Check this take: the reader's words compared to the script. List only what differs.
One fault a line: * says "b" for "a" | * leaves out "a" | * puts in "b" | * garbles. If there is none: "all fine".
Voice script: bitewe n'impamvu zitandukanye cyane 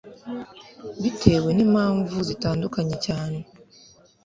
all fine